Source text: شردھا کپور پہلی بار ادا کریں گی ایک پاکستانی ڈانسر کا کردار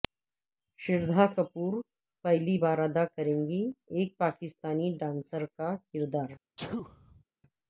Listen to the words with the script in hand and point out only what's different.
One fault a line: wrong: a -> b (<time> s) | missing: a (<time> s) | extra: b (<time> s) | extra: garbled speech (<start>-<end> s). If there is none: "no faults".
no faults